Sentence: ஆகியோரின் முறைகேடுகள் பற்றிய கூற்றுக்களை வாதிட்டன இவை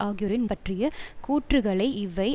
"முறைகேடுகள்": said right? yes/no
no